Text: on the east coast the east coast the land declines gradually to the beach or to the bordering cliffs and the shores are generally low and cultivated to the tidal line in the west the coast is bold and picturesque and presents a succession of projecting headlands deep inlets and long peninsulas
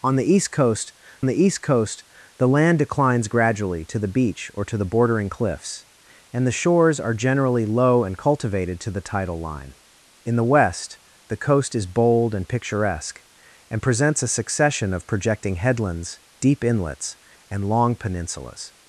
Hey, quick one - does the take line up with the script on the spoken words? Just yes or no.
yes